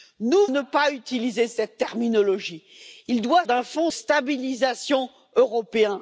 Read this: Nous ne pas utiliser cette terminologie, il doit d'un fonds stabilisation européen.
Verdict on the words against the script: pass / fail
pass